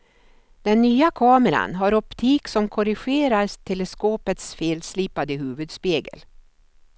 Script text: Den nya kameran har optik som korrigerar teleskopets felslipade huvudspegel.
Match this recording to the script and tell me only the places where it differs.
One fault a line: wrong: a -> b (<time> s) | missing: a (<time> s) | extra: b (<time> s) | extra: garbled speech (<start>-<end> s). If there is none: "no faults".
no faults